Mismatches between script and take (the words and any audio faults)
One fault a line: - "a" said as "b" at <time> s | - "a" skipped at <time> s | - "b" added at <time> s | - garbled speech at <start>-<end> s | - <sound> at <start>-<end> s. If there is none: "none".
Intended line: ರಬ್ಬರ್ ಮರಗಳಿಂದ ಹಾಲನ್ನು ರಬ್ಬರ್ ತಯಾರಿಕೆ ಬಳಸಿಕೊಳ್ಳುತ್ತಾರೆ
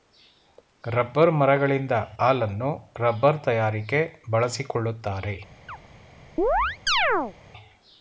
- chirp at 5.7-5.8 s
- chirp at 6.4-7.4 s